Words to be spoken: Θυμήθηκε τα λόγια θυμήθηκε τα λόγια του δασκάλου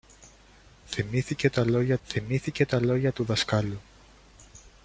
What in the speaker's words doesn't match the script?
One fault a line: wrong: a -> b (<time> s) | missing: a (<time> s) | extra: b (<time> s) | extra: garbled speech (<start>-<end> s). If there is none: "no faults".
no faults